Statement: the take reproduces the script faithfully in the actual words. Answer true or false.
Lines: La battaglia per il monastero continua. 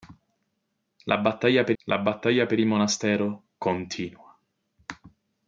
false